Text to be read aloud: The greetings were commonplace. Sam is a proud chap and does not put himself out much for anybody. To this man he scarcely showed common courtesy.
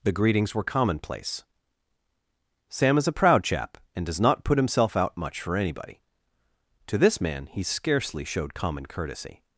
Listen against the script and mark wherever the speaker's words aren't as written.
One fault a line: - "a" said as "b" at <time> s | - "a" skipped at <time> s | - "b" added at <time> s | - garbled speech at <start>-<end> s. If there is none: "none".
none